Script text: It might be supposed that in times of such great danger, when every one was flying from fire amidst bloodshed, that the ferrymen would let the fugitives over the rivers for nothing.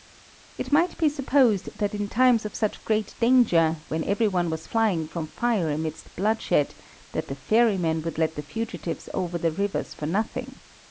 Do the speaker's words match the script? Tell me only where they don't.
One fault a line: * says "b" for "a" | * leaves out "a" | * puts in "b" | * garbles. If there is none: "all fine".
all fine